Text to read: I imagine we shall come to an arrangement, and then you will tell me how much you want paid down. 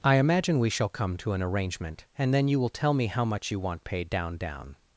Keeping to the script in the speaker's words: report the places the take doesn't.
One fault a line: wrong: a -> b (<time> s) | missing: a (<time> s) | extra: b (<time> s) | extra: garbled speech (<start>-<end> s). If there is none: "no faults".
extra: down (4.4 s)